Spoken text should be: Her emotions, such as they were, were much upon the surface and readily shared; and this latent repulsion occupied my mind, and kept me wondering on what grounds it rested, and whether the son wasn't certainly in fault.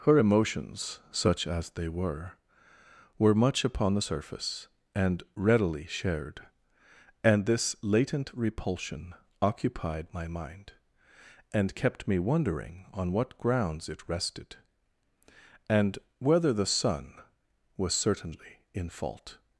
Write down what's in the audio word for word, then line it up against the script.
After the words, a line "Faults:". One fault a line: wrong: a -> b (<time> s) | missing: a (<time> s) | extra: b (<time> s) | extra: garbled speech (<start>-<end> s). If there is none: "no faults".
Her emotions, such as they were, were much upon the surface and readily shared; and this latent repulsion occupied my mind, and kept me wondering on what grounds it rested, and whether the son was certainly in fault.
Faults:
wrong: wasn't -> was (17.8 s)